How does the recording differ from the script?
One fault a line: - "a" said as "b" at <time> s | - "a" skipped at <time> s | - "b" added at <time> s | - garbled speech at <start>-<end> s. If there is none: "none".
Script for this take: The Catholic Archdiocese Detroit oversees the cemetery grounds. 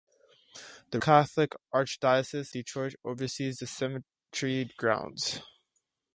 none